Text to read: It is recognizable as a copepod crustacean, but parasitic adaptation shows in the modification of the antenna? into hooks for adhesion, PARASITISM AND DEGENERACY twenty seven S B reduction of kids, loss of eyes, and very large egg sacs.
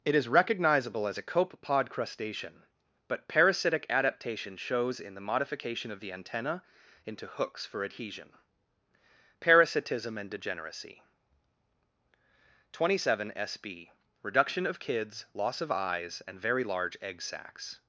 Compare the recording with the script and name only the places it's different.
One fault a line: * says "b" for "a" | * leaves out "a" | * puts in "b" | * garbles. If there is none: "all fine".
all fine